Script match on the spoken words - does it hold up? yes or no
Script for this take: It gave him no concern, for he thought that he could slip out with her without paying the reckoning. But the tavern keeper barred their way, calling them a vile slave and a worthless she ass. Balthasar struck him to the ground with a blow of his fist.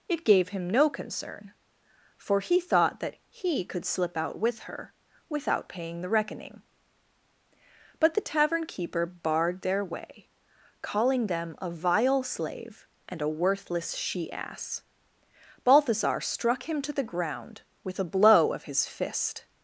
yes